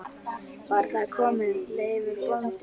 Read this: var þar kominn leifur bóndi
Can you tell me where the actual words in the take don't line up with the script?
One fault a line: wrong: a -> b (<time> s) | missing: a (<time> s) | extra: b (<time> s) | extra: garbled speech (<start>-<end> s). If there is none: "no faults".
no faults